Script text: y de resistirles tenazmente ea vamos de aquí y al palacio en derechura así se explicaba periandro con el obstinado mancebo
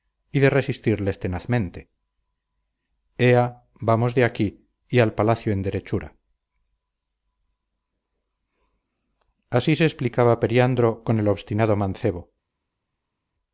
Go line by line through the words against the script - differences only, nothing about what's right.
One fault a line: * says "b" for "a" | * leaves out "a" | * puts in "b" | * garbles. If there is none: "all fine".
all fine